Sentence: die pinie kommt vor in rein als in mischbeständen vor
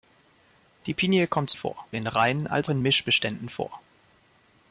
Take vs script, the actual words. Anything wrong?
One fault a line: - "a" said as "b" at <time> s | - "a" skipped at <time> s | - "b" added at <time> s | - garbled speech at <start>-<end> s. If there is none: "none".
none